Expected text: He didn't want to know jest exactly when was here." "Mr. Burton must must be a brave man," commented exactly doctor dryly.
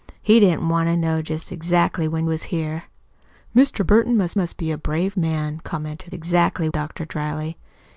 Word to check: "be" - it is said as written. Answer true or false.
true